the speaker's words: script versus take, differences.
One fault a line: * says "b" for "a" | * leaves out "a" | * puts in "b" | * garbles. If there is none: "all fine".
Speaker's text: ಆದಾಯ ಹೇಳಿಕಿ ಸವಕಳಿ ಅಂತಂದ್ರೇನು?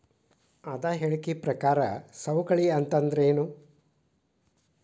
* puts in "ಪ್ರಕಾರ"